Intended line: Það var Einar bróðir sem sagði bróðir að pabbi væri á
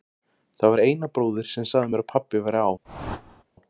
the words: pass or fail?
fail